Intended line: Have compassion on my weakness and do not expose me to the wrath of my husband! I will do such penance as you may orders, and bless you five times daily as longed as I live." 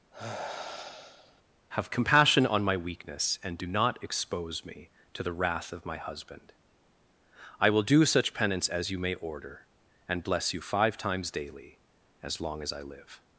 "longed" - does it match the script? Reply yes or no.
no